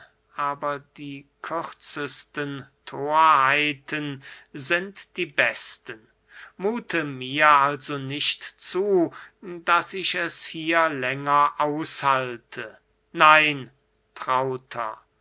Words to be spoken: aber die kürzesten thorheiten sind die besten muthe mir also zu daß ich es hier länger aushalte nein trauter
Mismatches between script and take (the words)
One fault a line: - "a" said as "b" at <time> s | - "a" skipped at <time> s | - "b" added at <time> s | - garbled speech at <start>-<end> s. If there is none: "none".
- "nicht" added at 8.0 s